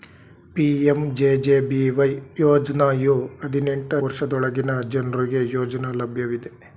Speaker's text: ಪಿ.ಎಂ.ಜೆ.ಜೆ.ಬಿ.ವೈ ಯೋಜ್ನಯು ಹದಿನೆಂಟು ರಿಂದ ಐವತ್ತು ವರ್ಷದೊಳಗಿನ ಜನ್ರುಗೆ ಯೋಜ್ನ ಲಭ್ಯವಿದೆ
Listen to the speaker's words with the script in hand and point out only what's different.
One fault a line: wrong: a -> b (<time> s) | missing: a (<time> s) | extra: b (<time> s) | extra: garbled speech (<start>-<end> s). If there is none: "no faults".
missing: ರಿಂದ ಐವತ್ತು (4.0 s)